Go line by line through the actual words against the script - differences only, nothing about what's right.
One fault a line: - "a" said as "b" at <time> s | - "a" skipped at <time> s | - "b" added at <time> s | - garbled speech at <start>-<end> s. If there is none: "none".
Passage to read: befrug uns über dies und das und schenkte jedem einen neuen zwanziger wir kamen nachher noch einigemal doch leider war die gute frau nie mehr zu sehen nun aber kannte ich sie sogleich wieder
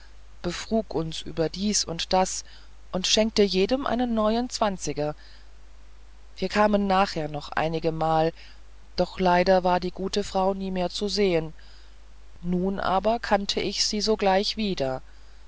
none